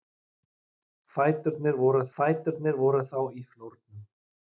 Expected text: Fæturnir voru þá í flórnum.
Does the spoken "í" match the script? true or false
true